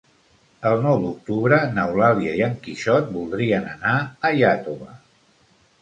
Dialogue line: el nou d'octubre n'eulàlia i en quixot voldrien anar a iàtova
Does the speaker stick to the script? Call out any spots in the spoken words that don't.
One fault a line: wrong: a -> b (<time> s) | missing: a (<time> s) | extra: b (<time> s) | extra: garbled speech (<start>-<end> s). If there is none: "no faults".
no faults